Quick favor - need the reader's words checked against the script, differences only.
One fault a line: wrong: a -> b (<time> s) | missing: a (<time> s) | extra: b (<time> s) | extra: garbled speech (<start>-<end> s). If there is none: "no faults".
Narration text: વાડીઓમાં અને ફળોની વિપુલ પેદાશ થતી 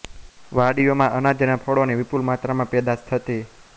extra: અનાજ (1.2 s)
extra: માત્રામાં (2.3 s)